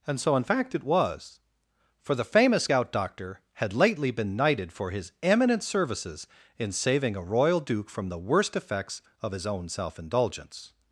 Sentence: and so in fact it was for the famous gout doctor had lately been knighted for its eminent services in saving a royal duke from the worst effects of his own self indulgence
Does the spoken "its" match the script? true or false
false